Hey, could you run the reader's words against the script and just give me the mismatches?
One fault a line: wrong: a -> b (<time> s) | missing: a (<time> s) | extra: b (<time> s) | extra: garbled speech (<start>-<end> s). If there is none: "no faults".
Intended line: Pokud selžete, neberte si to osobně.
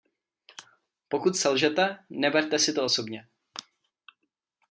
no faults